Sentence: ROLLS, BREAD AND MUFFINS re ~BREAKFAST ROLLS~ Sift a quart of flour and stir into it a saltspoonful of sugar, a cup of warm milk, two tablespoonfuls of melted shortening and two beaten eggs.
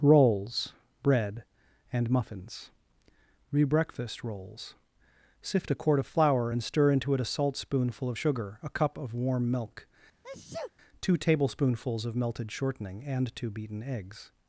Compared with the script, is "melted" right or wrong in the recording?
right